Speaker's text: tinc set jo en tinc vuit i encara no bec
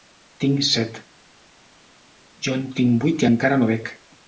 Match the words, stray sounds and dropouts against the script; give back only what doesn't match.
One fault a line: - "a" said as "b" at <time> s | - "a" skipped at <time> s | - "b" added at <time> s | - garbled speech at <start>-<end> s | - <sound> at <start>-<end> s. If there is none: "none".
none